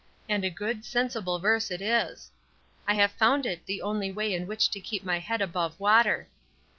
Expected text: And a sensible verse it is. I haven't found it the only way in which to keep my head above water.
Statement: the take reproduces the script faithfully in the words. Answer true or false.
false